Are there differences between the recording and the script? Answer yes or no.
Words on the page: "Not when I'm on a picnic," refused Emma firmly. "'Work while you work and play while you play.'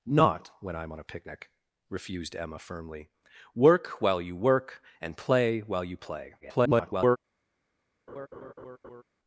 yes